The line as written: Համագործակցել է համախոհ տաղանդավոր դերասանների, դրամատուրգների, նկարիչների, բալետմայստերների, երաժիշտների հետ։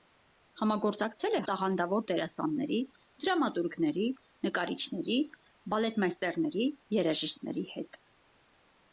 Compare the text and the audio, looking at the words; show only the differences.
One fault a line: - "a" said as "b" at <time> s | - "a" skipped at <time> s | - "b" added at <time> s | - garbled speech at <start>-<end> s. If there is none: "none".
- "համախոհ" skipped at 1.4 s